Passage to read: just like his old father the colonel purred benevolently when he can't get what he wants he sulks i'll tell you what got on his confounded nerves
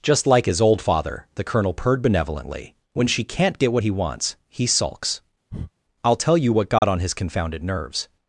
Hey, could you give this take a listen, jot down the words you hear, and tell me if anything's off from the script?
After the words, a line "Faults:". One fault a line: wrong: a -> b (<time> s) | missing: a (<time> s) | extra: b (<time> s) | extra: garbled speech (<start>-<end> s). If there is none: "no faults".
just like his old father the colonel purred benevolently when she can't get what he wants he sulks i'll tell you what got on his confounded nerves
Faults:
wrong: he -> she (3.1 s)